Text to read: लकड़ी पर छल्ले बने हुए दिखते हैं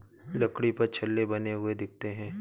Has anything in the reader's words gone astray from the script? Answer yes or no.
no